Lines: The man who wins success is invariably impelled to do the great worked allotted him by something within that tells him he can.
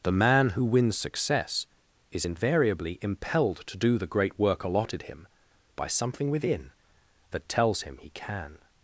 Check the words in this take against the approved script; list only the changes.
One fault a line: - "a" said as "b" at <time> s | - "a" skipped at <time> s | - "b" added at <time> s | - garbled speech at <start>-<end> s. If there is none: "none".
- "worked" said as "work" at 4.4 s